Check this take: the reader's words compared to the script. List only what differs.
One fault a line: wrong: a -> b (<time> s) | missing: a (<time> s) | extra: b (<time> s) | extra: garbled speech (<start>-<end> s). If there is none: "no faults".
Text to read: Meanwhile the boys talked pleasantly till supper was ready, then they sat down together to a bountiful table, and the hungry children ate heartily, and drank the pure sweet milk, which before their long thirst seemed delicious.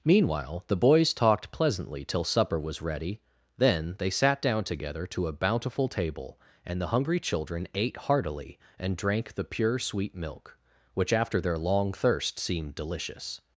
wrong: before -> after (11.1 s)